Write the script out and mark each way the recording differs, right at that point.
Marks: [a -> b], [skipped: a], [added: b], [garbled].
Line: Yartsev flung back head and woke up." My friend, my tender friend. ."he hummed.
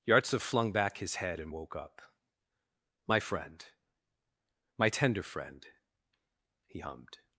Yartsev flung back [added: his] head and woke up." My friend, my tender friend. ."he hummed.